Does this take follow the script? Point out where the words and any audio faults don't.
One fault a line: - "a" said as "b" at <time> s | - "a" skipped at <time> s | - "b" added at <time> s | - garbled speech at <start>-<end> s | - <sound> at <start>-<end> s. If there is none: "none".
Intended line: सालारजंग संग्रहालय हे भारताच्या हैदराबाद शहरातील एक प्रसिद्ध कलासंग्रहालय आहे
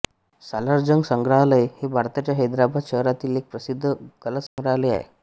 - dropout at 4.5-4.6 s